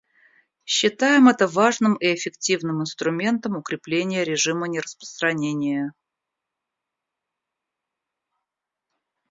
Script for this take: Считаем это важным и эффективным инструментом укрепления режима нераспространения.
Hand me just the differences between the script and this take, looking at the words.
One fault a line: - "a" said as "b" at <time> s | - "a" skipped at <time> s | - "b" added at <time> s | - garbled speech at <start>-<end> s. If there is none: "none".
none